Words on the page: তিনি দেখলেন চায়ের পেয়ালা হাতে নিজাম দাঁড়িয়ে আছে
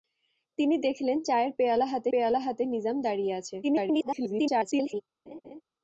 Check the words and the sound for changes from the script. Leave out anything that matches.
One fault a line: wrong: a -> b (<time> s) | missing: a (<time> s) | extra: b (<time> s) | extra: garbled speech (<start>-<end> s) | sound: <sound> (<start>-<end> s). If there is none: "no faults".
extra: পেয়ালা হাতে (2.1 s)
extra: garbled speech (3.6-5.0 s)
sound: laugh (5.3-5.6 s)